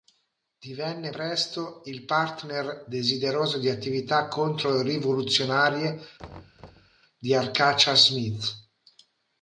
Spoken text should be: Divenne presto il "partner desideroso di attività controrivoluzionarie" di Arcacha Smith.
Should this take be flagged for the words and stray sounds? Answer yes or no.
yes